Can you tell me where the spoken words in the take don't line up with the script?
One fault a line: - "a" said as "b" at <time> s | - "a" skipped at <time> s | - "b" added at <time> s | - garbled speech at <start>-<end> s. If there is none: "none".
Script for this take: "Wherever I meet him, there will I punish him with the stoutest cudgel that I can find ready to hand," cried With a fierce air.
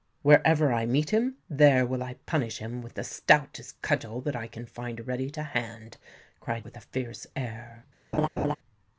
none